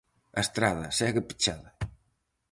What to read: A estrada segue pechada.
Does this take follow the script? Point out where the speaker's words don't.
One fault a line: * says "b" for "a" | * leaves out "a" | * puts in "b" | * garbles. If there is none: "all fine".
all fine